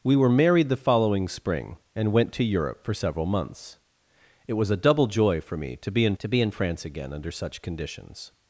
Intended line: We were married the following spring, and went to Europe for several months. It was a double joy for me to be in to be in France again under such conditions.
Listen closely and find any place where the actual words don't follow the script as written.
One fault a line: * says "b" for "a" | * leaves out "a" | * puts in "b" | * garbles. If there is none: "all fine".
all fine